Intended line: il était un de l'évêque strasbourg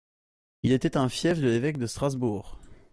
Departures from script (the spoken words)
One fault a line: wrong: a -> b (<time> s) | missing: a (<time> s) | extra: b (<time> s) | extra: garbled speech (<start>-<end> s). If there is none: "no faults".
extra: fief (1.1 s)
extra: de (1.8 s)